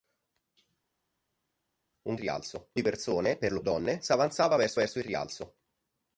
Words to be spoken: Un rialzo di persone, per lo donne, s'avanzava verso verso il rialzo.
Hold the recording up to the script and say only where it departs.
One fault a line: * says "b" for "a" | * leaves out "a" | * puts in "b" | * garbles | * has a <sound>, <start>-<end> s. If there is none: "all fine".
all fine